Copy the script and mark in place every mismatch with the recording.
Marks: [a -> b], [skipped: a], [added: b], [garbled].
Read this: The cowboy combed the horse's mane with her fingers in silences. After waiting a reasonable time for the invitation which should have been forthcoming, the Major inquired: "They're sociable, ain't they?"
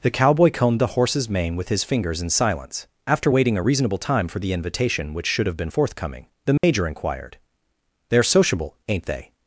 The cowboy combed the horse's mane with [her -> his] fingers in [silences. -> silence] After waiting a reasonable time for the invitation which should have been forthcoming, the Major inquired: "They're sociable, ain't they?"